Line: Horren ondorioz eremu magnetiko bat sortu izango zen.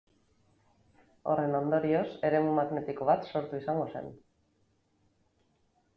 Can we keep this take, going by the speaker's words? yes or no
yes